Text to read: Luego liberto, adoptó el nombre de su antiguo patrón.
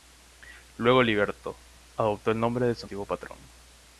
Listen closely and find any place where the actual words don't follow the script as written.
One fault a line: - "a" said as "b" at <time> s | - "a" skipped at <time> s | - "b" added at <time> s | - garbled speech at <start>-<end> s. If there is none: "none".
none